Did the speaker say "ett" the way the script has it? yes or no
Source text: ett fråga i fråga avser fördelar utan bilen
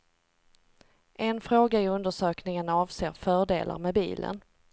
no